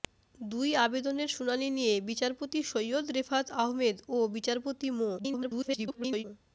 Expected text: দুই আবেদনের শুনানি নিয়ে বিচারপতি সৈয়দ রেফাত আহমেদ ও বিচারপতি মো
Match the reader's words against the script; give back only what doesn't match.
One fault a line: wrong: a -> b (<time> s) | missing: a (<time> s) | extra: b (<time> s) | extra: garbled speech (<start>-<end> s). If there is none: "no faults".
extra: garbled speech (5.2-6.2 s)